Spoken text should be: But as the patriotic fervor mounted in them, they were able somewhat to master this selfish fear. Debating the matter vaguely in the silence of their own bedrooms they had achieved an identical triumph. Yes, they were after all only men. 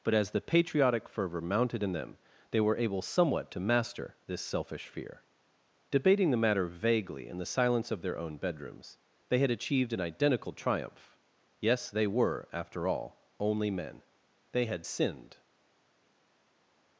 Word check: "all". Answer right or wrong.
right